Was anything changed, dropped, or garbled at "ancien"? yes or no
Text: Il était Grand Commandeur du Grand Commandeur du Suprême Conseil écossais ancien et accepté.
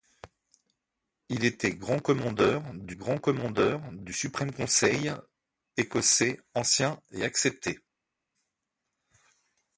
no